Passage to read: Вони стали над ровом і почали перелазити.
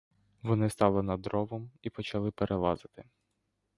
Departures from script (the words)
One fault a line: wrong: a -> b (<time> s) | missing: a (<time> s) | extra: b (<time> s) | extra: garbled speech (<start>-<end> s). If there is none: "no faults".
no faults